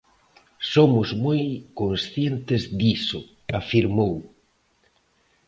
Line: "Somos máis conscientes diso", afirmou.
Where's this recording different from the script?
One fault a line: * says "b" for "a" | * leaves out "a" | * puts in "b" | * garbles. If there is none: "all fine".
* says "moi" for "máis"